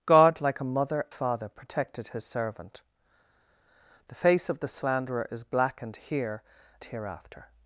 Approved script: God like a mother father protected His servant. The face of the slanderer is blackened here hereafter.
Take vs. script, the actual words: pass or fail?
pass